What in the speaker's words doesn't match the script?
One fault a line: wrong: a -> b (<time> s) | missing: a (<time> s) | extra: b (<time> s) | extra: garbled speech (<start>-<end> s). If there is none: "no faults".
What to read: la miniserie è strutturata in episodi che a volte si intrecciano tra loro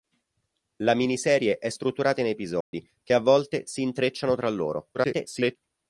extra: garbled speech (4.9-5.6 s)